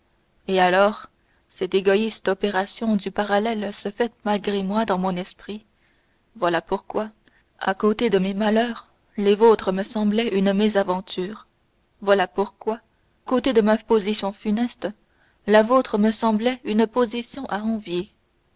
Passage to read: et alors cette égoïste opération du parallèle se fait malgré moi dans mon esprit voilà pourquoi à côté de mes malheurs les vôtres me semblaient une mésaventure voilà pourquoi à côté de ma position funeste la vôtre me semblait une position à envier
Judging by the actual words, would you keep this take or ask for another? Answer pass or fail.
fail